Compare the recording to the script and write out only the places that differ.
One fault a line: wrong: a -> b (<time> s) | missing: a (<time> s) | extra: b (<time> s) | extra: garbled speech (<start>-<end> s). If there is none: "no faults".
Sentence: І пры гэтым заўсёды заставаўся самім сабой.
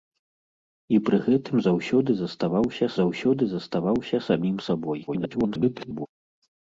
extra: заўсёды заставаўся (3.0 s)
extra: garbled speech (5.1-6.1 s)